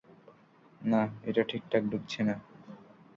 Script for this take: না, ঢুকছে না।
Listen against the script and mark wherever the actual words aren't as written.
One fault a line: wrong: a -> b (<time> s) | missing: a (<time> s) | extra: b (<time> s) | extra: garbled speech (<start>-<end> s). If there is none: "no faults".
extra: এটা ঠিকঠাক (1.2 s)